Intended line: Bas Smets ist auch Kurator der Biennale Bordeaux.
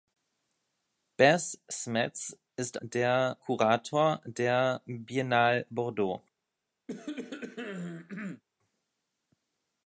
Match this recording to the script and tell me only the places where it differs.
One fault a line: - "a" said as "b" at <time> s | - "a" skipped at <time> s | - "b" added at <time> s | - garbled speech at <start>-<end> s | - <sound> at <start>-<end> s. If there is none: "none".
- "auch" said as "der" at 2.8 s
- cough at 6.9-8.4 s